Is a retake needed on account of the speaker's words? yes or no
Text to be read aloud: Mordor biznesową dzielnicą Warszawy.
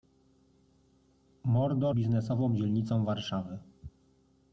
no